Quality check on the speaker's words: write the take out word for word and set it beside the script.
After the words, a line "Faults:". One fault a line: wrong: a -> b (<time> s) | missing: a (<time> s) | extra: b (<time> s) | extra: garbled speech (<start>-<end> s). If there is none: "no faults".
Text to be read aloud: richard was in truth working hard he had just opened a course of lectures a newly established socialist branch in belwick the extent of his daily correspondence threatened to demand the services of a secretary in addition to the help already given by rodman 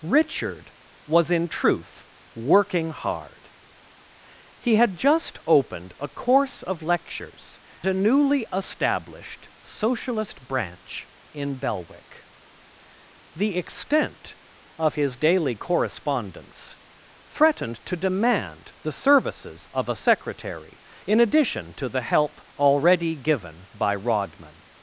richard was in truth working hard he had just opened a course of lectures a newly established socialist branch in belwick the extent of his daily correspondence threatened to demand the services of a secretary in addition to the help already given by rodman
Faults:
no faults